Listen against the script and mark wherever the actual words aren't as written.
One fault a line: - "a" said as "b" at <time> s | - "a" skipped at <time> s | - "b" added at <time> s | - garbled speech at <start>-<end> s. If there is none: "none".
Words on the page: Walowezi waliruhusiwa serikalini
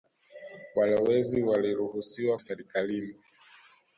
none